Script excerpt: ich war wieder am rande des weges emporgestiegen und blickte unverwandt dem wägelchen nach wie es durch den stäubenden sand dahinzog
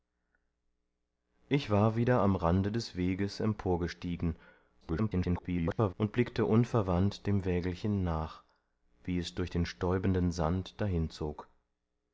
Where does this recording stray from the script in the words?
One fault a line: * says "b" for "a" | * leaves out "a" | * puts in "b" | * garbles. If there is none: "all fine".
* garbles